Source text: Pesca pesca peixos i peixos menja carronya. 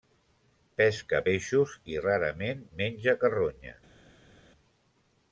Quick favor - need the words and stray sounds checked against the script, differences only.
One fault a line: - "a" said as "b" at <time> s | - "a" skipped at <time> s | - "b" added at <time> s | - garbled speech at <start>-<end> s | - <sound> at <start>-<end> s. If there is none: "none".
- "pesca" skipped at 1.2 s
- "peixos" said as "rarament" at 2.1 s